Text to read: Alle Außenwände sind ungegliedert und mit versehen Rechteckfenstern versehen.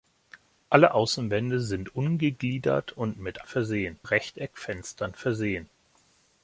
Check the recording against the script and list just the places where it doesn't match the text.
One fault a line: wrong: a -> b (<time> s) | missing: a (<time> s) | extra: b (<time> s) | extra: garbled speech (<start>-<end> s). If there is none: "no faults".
no faults